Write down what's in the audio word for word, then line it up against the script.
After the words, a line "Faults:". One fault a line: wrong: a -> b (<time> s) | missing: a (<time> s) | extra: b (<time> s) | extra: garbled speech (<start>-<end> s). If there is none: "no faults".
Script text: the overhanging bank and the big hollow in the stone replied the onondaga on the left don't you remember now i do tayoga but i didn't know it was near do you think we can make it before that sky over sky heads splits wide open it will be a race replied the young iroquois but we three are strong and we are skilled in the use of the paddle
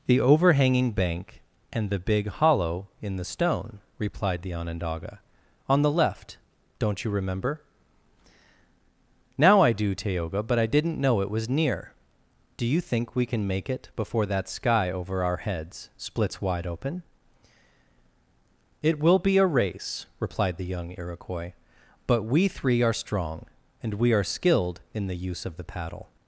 the overhanging bank and the big hollow in the stone replied the onondaga on the left don't you remember now i do tayoga but i didn't know it was near do you think we can make it before that sky over our heads splits wide open it will be a race replied the young iroquois but we three are strong and we are skilled in the use of the paddle
Faults:
wrong: sky -> our (15.2 s)